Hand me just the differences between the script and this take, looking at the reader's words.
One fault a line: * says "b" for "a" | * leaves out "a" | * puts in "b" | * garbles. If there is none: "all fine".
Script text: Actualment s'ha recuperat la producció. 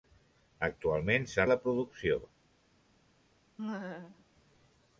* leaves out "recuperat"